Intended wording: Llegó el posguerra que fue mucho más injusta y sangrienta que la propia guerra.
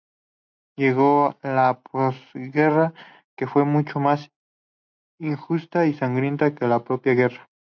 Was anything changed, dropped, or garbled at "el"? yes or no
yes